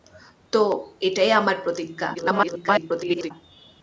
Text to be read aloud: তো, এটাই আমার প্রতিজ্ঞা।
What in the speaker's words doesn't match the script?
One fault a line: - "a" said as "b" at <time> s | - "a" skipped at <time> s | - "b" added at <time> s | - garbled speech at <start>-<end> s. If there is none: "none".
- garbled speech at 2.1-3.3 s